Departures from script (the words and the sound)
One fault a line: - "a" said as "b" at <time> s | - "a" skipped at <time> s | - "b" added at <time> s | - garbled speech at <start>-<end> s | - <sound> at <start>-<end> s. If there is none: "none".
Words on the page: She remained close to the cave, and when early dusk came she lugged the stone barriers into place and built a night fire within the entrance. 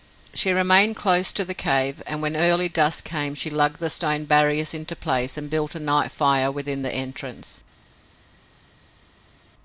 none